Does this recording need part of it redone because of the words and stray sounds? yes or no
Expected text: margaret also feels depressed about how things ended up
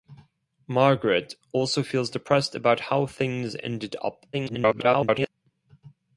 yes